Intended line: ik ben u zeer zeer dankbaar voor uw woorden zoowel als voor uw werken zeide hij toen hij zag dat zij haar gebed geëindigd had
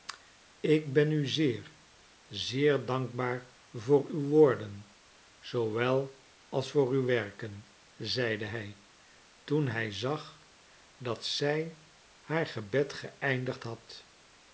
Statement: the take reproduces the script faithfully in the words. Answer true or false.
true